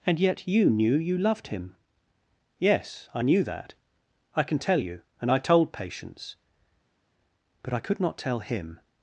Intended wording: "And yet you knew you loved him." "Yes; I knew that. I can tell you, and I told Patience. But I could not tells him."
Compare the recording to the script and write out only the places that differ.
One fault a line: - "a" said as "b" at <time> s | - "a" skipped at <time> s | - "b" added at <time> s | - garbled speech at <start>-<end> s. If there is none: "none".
- "tells" said as "tell" at 8.2 s